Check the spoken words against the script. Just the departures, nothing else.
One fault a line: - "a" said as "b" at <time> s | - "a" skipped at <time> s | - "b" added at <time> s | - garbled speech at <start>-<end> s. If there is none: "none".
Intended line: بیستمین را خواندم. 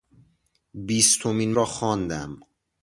none